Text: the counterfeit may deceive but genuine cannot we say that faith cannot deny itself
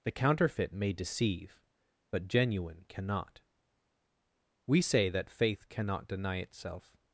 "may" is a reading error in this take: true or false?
false